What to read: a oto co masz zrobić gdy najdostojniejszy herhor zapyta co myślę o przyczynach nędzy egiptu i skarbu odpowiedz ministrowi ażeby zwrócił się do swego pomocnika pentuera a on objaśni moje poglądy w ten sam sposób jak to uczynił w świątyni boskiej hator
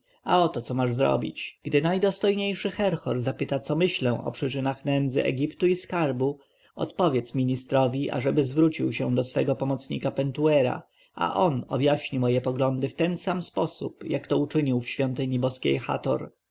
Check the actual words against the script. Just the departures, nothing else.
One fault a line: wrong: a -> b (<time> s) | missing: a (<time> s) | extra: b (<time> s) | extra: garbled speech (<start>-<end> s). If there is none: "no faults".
no faults